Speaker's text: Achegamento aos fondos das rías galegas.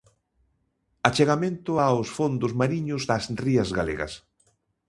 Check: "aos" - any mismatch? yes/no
no